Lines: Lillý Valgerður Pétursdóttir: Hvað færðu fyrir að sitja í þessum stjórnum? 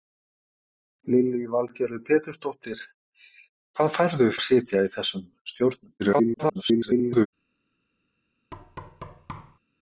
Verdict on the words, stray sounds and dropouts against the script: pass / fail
fail